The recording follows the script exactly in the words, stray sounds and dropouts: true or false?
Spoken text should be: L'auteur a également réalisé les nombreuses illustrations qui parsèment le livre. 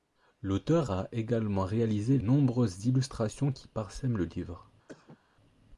false